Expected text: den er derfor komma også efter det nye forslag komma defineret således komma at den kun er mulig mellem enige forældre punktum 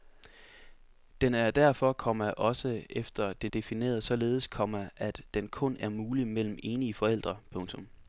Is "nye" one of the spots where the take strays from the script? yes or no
yes